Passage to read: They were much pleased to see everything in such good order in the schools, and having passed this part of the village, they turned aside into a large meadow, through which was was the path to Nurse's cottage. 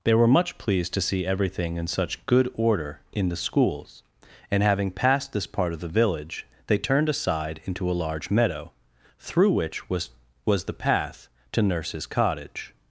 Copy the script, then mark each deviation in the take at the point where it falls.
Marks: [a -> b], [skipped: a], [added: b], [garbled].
They were much pleased to see everything in such good order in the schools, and having passed this part of the village, they turned aside into a large meadow, through which was was the path to Nurse's cottage.